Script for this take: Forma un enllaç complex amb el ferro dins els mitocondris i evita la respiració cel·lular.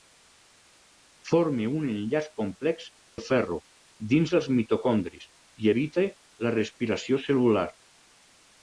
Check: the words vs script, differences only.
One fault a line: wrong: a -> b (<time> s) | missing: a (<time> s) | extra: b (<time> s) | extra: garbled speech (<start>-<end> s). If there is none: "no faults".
missing: amb (2.9 s)